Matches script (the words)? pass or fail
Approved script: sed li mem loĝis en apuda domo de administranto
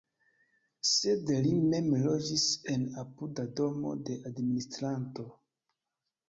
pass